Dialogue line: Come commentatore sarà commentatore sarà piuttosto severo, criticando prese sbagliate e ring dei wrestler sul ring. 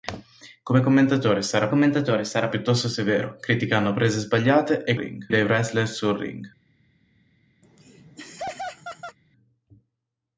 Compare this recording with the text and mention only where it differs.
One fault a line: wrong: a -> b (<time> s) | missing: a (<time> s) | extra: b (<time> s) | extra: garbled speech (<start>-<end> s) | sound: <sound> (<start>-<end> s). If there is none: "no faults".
sound: laugh (7.6-9.2 s)